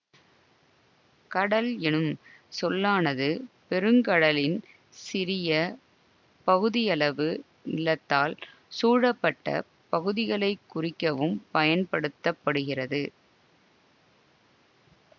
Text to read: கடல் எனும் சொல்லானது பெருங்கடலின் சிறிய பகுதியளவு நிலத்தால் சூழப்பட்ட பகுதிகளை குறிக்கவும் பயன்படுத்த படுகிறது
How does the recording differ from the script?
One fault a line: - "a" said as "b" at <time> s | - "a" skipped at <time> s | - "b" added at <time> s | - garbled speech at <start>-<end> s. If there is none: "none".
none